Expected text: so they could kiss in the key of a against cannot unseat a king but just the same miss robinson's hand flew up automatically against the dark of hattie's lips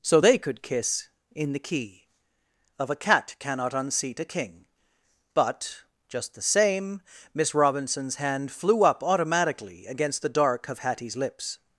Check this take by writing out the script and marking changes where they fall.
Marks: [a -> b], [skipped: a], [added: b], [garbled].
so they could kiss in the key of a [against -> cat] cannot unseat a king but just the same miss robinson's hand flew up automatically against the dark of hattie's lips